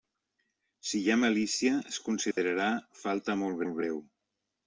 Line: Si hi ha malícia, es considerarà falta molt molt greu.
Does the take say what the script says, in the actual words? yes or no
yes